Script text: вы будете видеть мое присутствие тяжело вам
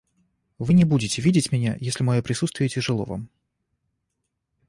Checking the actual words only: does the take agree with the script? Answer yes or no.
no